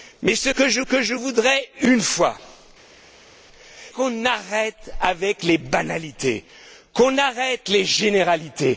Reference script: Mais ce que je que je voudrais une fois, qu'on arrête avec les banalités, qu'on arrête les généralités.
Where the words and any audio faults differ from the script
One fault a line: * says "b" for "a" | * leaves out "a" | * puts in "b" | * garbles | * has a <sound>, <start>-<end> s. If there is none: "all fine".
all fine